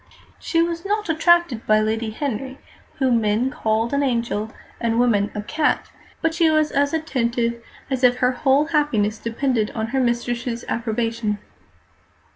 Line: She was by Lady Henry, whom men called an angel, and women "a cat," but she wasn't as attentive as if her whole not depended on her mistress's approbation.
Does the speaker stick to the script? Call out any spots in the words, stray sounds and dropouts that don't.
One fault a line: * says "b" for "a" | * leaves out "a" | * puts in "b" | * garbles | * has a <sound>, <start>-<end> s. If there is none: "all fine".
* puts in "not attracted"
* says "was" for "wasn't"
* says "happiness" for "not"